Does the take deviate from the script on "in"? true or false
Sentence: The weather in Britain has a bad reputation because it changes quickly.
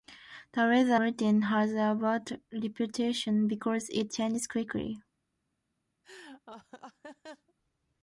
true